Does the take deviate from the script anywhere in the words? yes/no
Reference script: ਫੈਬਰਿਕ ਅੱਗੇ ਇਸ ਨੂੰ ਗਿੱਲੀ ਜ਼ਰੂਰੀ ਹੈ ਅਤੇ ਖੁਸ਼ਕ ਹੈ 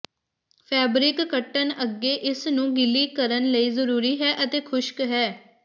yes